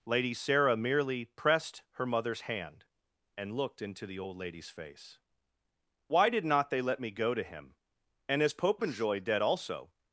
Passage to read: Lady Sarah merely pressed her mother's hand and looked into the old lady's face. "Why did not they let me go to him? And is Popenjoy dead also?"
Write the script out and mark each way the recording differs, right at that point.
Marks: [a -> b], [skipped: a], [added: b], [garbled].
Lady Sarah merely pressed her mother's hand and looked into the old lady's face. "Why did not they let me go to him? And is Popenjoy dead also?"